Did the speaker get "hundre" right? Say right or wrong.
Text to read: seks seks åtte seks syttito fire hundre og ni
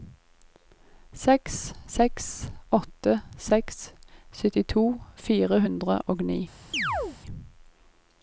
right